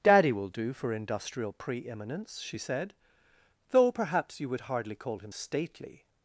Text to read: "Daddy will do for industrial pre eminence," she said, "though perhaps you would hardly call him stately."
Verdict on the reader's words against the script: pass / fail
pass